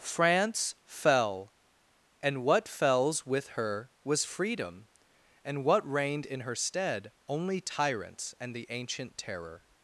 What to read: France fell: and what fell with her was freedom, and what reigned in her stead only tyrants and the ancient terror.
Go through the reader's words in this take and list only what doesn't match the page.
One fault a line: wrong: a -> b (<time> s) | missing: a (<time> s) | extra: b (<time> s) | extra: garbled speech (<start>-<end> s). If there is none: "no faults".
wrong: fell -> fells (2.7 s)